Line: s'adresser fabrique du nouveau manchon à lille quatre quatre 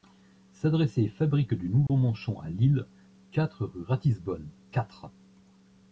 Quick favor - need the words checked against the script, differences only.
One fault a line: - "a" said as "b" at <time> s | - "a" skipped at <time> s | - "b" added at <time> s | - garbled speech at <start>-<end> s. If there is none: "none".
- "rue ratisbonne" added at 3.6 s